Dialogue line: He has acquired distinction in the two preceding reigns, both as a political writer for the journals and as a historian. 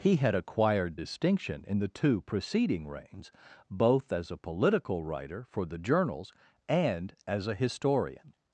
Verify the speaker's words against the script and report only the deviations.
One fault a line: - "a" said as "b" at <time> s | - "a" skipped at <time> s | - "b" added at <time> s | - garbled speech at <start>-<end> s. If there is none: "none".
- "has" said as "had" at 0.1 s